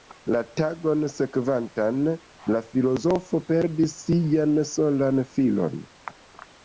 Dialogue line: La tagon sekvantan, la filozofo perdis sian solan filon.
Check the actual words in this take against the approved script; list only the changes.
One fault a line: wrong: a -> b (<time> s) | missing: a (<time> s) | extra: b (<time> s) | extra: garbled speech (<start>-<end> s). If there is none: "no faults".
no faults